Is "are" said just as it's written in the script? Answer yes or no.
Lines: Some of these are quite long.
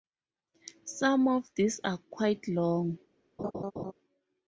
yes